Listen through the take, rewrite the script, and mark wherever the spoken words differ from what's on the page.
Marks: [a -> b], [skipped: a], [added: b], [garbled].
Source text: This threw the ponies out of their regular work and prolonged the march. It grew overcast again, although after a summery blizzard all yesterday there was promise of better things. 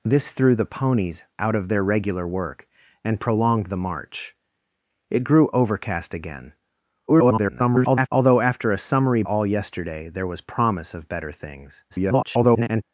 This threw the ponies out of their regular work and prolonged the march. It grew overcast again, [garbled] although after a summery [skipped: blizzard] all yesterday there was promise of better things. [garbled]